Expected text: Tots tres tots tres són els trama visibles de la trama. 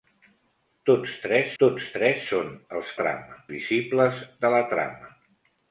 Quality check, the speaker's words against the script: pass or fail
pass